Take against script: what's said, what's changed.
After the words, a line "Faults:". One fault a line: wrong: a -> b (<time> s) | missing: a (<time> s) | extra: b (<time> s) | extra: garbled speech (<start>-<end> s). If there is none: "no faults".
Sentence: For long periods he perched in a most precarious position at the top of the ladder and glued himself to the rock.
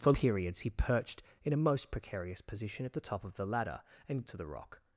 For periods he perched in a most precarious position at the top of the ladder and to the rock.
Faults:
missing: long (0.1 s)
missing: glued himself (4.2 s)